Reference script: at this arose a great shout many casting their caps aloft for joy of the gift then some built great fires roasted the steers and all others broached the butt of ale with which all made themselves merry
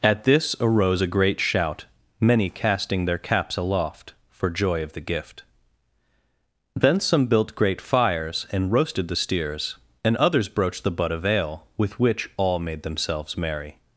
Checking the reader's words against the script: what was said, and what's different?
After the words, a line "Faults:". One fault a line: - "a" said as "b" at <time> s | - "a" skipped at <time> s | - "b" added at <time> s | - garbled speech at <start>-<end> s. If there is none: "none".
at this arose a great shout many casting their caps aloft for joy of the gift then some built great fires and roasted the steers and others broached the butt of ale with which all made themselves merry
Faults:
- "and" added at 8.5 s
- "all" skipped at 10.1 s